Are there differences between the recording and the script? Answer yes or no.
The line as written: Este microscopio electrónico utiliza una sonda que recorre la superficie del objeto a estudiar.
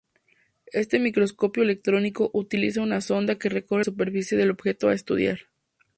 yes